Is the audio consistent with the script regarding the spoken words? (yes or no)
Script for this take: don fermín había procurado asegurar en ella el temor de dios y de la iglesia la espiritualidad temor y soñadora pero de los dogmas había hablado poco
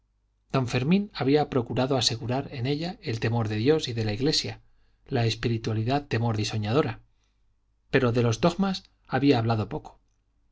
yes